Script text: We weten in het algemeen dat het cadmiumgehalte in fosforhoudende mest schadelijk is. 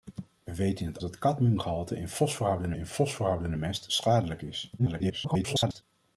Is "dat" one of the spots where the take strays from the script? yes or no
yes